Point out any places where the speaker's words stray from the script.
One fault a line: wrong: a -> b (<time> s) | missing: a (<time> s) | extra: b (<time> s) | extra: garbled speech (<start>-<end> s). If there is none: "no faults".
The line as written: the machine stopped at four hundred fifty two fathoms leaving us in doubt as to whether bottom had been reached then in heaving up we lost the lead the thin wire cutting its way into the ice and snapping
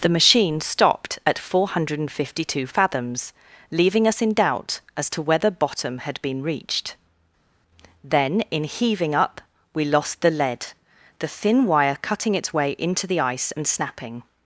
no faults